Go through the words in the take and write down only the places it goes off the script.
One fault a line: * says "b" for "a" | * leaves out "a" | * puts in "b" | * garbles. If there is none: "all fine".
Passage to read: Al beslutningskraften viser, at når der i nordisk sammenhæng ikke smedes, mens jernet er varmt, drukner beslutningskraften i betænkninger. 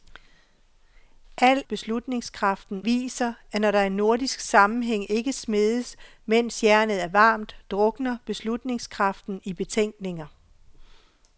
all fine